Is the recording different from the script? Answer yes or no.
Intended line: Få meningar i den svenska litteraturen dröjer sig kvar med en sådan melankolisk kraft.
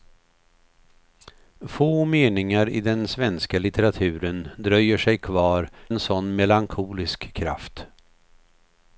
yes